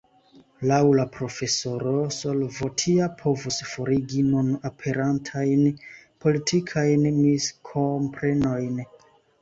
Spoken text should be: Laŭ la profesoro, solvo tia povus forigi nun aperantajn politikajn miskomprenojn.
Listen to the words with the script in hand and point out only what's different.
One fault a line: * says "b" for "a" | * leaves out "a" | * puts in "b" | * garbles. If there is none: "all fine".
all fine